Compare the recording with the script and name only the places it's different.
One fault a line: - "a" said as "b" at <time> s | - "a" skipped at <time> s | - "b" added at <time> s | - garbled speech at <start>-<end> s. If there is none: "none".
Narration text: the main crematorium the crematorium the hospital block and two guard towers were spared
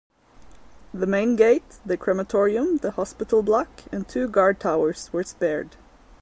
- "crematorium" said as "gate" at 1.4 s